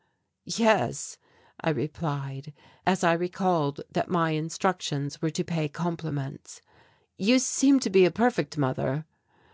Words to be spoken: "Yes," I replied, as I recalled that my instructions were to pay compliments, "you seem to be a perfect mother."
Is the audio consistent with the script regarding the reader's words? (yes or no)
yes